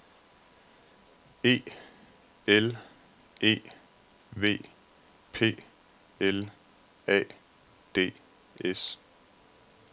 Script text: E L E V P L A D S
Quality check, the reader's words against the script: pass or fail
pass